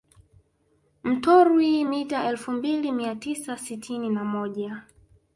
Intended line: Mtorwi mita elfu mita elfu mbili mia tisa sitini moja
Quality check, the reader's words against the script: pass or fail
fail